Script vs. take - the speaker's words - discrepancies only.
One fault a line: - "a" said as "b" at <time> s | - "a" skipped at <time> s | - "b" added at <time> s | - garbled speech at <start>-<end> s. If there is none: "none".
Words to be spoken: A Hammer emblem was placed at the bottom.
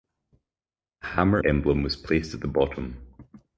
none